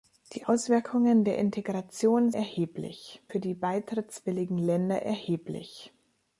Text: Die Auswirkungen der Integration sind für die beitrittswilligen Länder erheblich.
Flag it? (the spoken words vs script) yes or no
yes